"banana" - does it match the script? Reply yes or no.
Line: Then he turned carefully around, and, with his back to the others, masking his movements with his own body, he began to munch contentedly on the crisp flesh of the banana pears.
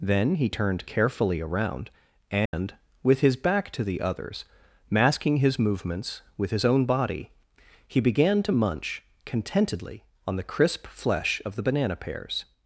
yes